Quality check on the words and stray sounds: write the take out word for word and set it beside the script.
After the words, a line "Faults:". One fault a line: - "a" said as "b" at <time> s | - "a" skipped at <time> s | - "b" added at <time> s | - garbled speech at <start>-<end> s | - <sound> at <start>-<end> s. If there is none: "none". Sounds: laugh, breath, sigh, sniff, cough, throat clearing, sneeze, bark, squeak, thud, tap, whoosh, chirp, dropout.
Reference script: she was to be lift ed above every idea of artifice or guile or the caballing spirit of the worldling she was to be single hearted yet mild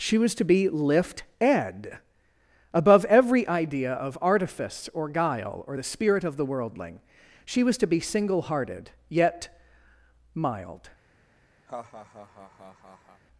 she was to be lift ed above every idea of artifice or guile or the spirit of the worldling she was to be single hearted yet mild
Faults:
- "caballing" skipped at 5.8 s
- laugh at 11.7-13.2 s